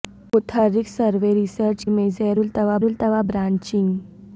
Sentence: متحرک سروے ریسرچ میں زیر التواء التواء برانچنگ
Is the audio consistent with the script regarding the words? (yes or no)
yes